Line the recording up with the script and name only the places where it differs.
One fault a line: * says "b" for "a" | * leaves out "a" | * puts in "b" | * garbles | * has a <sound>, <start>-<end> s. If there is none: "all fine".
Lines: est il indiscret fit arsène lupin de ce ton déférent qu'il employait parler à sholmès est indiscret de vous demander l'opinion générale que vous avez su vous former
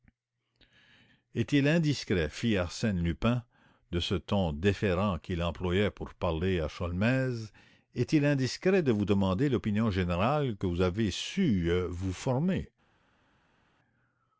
* puts in "pour"
* puts in "il"